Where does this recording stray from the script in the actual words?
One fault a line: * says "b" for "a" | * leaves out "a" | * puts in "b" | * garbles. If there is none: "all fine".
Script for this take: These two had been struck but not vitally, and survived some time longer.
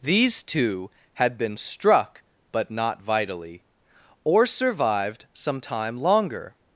* says "or" for "and"